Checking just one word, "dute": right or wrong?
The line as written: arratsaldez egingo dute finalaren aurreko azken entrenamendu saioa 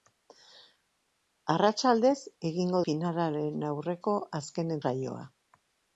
wrong